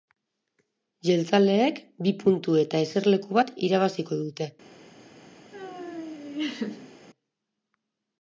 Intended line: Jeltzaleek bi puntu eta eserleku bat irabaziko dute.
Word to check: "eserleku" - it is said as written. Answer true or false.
true